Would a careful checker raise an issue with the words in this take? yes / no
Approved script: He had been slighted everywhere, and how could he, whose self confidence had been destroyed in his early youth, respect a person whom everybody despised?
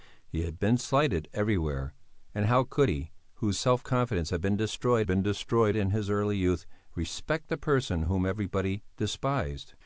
yes